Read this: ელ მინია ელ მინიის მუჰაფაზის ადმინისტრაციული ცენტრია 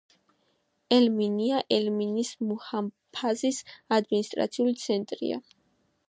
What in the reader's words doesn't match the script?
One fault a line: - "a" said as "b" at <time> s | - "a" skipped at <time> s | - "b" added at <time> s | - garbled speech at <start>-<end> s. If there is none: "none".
none